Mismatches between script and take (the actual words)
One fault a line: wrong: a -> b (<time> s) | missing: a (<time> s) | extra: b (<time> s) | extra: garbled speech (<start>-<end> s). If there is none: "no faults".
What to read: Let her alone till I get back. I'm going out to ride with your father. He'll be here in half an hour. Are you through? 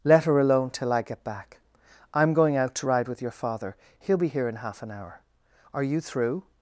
no faults